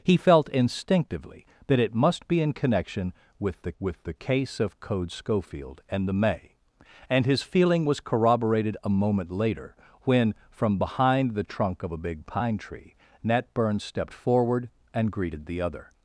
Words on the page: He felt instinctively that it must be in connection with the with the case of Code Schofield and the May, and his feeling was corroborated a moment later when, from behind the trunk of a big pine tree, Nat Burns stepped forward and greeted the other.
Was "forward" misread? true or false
false